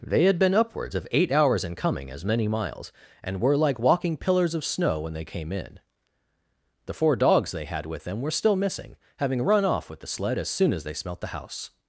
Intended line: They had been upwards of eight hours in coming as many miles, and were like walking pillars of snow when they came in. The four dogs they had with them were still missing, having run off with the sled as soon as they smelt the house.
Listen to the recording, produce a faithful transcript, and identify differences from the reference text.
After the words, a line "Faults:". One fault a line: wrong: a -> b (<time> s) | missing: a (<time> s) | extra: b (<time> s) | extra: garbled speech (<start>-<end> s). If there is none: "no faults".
They had been upwards of eight hours in coming as many miles, and were like walking pillars of snow when they came in. The four dogs they had with them were still missing, having run off with the sled as soon as they smelt the house.
Faults:
no faults